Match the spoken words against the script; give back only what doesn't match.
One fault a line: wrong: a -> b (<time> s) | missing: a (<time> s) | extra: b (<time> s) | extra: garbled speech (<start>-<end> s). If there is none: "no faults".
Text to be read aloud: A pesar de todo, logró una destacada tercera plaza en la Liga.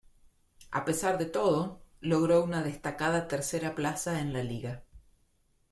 no faults